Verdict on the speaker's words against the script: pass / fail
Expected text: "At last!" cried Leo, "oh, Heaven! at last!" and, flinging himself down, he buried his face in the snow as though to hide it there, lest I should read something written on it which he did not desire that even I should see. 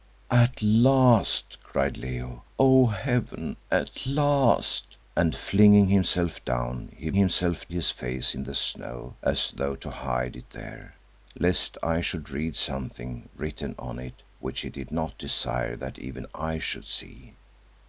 fail